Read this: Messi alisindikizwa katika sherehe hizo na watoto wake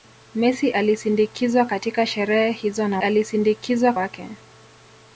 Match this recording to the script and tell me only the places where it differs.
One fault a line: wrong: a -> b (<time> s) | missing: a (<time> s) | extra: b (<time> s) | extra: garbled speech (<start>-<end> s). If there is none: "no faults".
wrong: watoto -> alisindikizwa (3.0 s)